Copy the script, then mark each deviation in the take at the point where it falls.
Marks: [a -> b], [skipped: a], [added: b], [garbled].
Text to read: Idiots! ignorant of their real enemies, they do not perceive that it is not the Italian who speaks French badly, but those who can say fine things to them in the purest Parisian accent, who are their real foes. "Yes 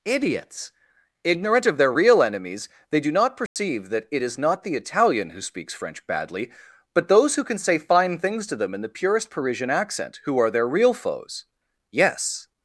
Idiots! ignorant of their real enemies, they do not perceive that it is not the Italian who speaks French badly, but those who can say fine things to them in the purest Parisian accent, who are their real foes. "Yes